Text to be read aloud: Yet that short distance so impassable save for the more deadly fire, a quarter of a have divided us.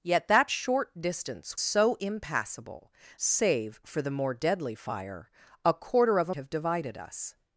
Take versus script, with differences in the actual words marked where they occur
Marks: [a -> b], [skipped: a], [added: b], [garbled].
Yet that short distance so impassable save for the more deadly fire, a quarter of a have divided us.